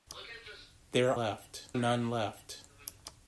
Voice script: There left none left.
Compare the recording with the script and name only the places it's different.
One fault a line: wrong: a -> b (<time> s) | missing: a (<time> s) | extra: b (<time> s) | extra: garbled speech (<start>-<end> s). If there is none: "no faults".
no faults